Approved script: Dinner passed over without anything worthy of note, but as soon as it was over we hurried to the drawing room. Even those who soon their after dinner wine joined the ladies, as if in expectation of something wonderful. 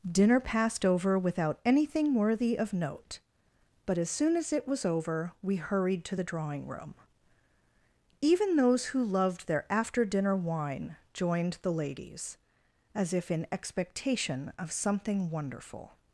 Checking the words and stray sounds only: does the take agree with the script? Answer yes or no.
no